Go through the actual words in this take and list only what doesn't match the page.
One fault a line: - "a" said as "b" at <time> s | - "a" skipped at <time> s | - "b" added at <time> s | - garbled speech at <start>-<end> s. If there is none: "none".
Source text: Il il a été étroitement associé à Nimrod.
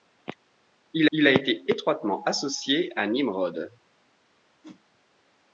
none